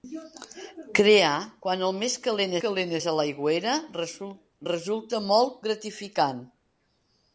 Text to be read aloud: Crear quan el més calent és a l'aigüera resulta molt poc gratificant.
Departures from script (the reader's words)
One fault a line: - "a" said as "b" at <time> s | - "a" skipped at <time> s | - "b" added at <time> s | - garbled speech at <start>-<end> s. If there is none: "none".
- "calent" added at 2.6 s
- "poc" skipped at 5.6 s